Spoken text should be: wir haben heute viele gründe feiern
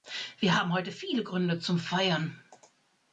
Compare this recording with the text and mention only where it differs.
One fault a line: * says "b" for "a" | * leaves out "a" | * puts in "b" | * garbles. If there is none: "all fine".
* puts in "zum"